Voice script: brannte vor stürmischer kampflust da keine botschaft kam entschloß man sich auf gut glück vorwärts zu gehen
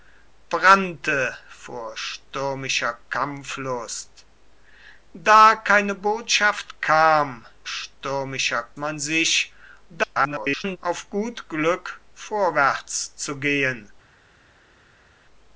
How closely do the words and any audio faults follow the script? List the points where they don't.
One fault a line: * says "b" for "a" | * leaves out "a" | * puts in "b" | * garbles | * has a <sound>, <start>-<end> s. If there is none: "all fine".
* says "stürmischer" for "entschloß"
* garbles